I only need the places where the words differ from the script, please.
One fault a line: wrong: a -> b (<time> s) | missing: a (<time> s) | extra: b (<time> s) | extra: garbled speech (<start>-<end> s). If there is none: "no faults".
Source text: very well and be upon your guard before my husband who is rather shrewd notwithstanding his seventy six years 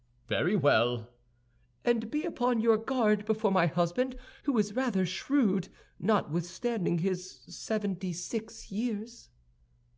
no faults